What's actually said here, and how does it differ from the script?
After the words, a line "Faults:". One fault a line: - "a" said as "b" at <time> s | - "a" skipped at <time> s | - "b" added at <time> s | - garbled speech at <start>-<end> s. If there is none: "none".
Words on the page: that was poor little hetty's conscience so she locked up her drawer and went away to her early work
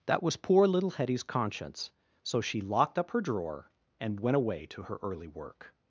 that was poor little hetty's conscience so she locked up her drawer and went away to her early work
Faults:
none